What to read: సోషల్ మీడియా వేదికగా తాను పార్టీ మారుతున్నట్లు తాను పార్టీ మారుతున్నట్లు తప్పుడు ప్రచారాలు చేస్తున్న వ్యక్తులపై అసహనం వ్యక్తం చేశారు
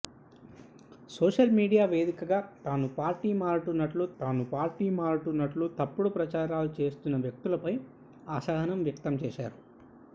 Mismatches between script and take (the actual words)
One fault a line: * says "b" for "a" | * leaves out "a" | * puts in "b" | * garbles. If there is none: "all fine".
all fine